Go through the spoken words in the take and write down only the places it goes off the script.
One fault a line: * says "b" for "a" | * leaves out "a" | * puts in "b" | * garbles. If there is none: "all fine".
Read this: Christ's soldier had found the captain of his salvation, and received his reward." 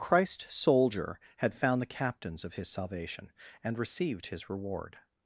* says "captains" for "captain"